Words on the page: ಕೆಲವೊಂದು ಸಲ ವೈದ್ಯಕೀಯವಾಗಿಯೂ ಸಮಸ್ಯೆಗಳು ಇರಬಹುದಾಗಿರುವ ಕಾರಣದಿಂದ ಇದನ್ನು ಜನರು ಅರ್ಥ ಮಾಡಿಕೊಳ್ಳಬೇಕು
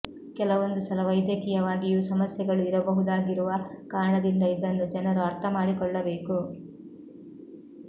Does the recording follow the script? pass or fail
pass